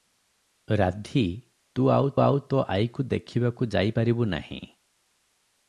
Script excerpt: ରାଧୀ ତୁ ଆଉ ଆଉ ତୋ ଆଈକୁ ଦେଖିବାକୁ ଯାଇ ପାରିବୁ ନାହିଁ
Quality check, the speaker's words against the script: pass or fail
pass